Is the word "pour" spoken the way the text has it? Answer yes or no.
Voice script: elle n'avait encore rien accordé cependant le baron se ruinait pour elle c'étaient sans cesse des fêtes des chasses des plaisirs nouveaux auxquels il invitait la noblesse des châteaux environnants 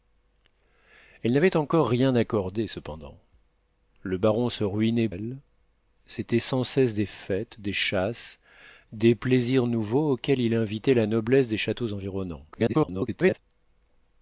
no